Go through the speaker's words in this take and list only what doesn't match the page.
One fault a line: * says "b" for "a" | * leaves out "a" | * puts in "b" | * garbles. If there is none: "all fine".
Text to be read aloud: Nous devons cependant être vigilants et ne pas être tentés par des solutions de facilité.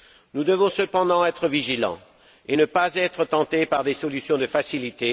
all fine